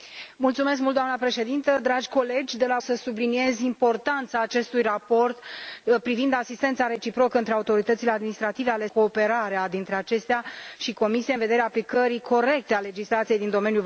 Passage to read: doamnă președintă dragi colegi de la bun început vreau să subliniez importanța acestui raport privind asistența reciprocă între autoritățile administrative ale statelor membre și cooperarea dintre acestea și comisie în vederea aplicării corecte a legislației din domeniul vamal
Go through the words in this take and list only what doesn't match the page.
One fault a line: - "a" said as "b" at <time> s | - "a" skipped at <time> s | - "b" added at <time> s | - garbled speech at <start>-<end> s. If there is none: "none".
- "bun început vreau" skipped at 2.8 s
- "statelor membre și" skipped at 8.9 s